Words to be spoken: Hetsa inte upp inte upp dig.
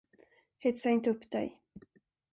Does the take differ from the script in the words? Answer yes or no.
yes